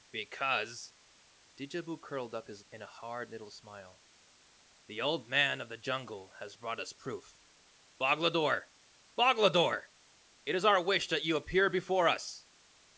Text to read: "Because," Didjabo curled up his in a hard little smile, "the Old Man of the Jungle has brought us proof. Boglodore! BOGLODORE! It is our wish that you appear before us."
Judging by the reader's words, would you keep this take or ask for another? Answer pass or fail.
pass